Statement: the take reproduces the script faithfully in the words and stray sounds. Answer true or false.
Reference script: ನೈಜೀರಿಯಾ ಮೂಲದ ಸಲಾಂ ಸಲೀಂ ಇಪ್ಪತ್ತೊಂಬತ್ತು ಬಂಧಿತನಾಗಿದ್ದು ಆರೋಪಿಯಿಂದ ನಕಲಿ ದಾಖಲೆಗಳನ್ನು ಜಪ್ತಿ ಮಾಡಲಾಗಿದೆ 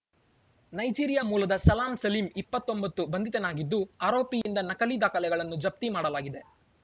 false